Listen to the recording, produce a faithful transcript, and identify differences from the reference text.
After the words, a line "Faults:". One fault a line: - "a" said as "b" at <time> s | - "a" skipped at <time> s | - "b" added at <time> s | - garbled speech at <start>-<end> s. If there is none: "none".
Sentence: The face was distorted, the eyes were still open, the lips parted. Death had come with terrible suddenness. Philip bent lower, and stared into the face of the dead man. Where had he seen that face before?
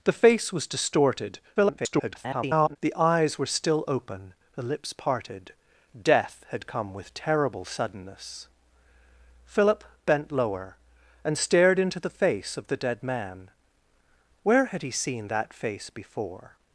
The face was distorted, [garbled] the eyes were still open, the lips parted. Death had come with terrible suddenness. Philip bent lower, and stared into the face of the dead man. Where had he seen that face before?
Faults:
- garbled speech at 1.6-2.8 s